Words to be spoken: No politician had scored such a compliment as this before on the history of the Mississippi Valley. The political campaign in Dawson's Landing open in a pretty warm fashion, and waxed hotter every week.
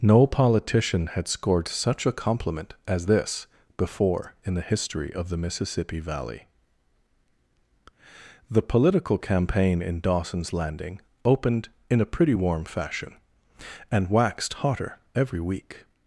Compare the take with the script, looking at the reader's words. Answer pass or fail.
fail